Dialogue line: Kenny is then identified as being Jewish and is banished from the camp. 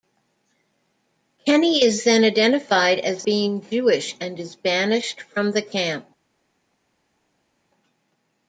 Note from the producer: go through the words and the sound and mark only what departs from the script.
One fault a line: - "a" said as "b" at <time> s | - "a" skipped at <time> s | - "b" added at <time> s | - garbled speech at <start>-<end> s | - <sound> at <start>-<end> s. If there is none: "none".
none